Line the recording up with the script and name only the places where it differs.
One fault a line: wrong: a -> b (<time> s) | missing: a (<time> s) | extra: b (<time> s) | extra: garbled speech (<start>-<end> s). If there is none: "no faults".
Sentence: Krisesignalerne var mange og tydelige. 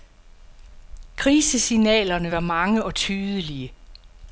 no faults